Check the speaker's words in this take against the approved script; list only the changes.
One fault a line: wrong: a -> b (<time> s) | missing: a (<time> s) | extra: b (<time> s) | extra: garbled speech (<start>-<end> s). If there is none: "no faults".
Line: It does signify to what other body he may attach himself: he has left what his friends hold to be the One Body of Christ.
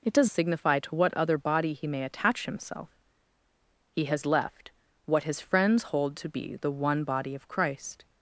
no faults